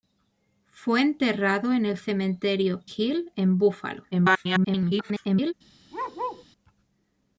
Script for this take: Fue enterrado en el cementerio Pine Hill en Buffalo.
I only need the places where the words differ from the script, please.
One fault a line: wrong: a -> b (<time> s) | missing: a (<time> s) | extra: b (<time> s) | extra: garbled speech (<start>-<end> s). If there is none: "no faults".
missing: Pine (2.8 s)
extra: garbled speech (4.1-5.5 s)